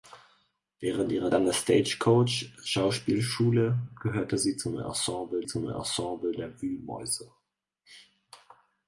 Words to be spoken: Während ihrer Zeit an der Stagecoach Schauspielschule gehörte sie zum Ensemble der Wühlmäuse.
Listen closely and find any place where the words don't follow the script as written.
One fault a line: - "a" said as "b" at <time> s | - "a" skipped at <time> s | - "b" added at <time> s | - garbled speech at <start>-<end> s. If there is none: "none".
- "Zeit" skipped at 1.3 s
- "zum Ensemble" added at 5.5 s